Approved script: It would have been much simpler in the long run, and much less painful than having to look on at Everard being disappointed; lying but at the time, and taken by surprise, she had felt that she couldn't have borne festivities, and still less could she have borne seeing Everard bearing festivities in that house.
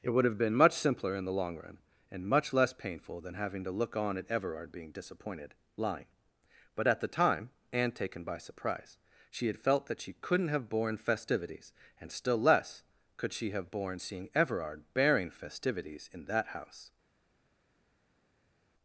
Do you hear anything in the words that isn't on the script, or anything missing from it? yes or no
no